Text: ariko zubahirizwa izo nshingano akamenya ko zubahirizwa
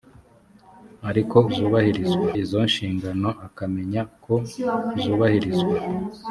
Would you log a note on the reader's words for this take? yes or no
no